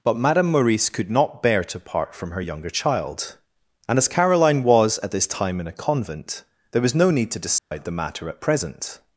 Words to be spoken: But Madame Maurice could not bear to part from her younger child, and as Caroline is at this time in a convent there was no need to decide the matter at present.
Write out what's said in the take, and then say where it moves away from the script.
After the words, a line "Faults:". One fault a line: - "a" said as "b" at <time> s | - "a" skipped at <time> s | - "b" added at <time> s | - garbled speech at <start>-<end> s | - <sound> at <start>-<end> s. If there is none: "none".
But Madame Maurice could not bear to part from her younger child, and as Caroline was at this time in a convent there was no need to decide the matter at present.
Faults:
- "is" said as "was" at 4.6 s
- dropout at 7.6-7.7 s